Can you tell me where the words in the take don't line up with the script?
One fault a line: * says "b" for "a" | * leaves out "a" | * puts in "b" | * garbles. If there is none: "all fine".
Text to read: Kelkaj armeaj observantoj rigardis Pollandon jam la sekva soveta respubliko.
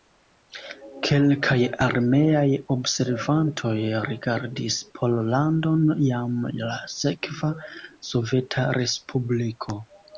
all fine